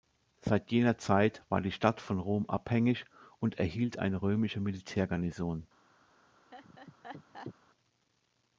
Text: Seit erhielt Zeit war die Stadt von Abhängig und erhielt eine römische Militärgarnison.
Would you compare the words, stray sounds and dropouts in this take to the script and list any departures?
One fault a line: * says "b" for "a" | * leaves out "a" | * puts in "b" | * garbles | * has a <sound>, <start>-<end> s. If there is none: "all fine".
* says "jener" for "erhielt"
* puts in "Rom"
* has a laugh, 6.5-7.5 s